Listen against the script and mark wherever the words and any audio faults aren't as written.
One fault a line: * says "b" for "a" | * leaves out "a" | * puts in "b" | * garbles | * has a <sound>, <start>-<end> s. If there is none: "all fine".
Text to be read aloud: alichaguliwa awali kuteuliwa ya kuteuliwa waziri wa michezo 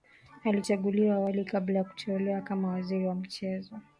* says "kabla" for "kuteuliwa"
* puts in "kama"